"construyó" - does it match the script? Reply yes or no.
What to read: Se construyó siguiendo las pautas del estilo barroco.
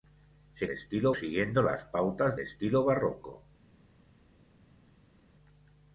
no